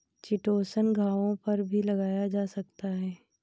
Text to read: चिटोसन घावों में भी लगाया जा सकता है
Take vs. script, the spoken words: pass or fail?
fail